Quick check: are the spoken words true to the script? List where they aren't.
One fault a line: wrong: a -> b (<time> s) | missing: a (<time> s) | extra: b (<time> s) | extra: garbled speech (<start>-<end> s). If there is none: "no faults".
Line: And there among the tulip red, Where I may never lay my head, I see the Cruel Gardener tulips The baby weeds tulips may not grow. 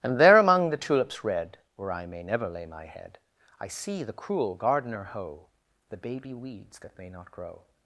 wrong: tulip -> tulips (0.8 s)
wrong: tulips -> hoe (5.1 s)
wrong: tulips -> that (6.8 s)